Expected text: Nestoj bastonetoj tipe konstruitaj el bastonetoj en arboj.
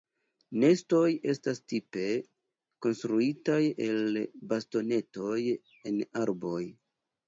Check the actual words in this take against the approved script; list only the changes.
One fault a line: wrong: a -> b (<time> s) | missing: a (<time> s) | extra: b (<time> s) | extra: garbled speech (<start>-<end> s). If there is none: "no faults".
wrong: bastonetoj -> estas (1.3 s)